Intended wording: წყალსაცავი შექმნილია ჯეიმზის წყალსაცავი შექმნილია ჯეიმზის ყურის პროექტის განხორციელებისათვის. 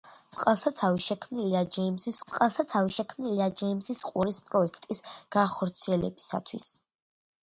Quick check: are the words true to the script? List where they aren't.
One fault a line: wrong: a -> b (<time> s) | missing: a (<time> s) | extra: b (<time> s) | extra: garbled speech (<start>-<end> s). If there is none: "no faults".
no faults